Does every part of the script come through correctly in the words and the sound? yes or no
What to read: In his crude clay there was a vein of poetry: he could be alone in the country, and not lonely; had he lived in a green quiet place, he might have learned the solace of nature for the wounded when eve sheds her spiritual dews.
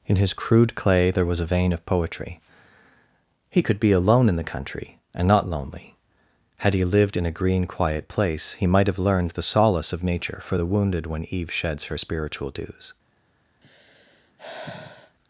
no